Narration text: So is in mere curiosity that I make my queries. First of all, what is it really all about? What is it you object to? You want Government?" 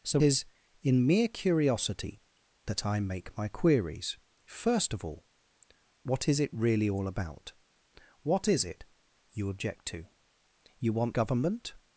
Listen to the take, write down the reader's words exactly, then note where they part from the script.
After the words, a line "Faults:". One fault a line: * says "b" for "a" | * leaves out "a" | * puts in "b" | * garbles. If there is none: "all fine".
So is in mere curiosity that I make my queries. First of all, what is it really all about? What is it you object to? You want Government?"
Faults:
all fine